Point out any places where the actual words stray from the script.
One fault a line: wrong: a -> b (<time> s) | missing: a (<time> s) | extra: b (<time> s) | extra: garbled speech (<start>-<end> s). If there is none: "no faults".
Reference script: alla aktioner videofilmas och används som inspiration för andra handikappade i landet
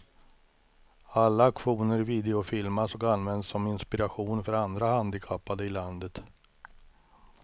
no faults